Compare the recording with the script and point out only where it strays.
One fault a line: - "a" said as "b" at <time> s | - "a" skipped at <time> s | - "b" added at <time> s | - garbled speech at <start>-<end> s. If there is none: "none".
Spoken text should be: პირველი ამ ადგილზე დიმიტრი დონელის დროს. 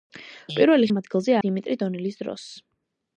none